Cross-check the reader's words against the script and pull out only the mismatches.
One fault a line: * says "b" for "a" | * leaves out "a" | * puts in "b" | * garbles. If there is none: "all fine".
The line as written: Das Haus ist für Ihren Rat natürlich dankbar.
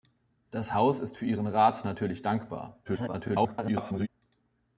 * garbles